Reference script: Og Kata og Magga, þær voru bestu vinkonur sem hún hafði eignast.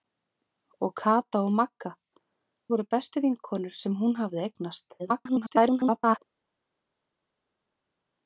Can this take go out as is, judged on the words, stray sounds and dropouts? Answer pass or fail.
fail